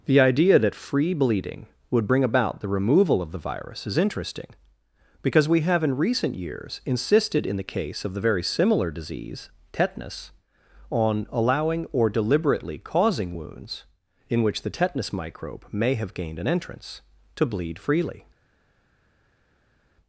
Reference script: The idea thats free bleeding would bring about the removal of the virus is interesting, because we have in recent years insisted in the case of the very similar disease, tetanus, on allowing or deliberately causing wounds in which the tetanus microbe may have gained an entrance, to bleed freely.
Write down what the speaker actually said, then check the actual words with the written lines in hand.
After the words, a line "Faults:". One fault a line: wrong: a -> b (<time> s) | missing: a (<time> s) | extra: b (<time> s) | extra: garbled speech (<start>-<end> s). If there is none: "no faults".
The idea that free bleeding would bring about the removal of the virus is interesting, because we have in recent years insisted in the case of the very similar disease, tetanus, on allowing or deliberately causing wounds in which the tetanus microbe may have gained an entrance, to bleed freely.
Faults:
wrong: thats -> that (0.6 s)